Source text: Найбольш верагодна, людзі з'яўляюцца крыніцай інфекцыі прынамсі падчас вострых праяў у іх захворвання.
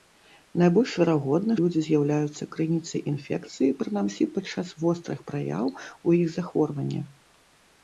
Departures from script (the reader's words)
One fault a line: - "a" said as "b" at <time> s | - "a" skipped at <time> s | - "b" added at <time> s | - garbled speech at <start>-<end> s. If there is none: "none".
none